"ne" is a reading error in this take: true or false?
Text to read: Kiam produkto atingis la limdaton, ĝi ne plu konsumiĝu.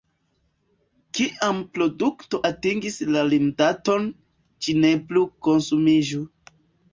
false